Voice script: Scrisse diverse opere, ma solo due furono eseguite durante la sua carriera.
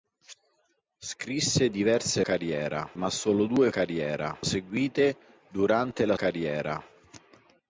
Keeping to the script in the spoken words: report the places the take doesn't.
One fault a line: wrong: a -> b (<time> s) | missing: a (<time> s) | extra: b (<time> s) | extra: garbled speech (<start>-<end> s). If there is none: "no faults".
wrong: opere -> carriera (2.2 s)
wrong: furono -> carriera (3.7 s)
missing: sua (6.2 s)